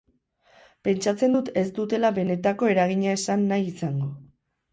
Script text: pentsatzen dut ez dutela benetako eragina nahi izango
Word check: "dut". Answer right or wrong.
right